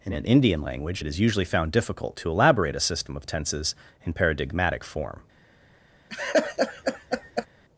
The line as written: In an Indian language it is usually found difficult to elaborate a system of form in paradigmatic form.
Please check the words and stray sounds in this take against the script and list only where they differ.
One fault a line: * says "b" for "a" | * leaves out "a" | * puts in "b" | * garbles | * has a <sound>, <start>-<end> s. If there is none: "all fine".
* says "tenses" for "form"
* has a laugh, 6.1-7.5 s